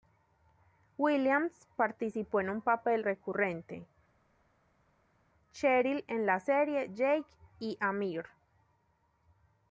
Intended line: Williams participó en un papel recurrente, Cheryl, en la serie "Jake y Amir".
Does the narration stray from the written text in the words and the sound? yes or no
no